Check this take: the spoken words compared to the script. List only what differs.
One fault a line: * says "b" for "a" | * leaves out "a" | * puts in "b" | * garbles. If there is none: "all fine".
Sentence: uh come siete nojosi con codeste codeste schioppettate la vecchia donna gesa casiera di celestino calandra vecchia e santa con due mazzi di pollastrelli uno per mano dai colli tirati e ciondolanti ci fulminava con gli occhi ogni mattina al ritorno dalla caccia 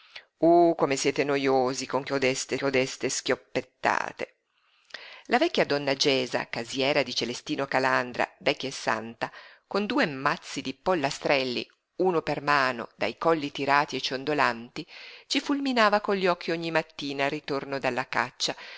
all fine